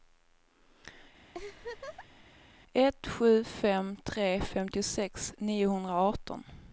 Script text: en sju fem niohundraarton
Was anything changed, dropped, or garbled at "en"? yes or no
yes